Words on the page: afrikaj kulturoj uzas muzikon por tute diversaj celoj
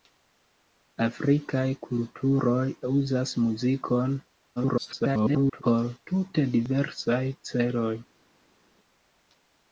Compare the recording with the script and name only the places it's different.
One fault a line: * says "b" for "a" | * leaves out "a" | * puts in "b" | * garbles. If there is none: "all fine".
* garbles